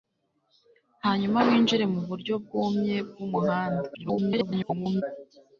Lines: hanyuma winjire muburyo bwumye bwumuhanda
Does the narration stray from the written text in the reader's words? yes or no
yes